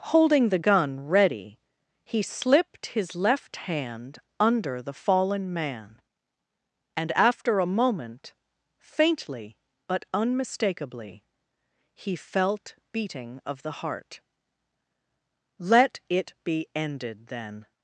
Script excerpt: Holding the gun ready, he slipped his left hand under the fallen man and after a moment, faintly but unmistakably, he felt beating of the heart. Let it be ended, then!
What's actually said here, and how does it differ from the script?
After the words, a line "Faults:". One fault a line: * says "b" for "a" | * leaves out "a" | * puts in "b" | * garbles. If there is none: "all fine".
Holding the gun ready, he slipped his left hand under the fallen man and after a moment, faintly but unmistakably, he felt beating of the heart. Let it be ended, then!
Faults:
all fine